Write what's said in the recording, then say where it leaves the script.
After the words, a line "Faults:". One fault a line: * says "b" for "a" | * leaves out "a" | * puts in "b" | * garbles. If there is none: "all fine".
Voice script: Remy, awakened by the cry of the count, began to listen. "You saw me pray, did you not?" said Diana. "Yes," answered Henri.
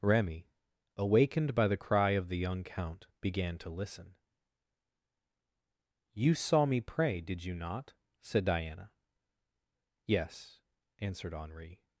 Remy, awakened by the cry of the young count, began to listen. "You saw me pray, did you not?" said Diana. "Yes," answered Henri.
Faults:
* puts in "young"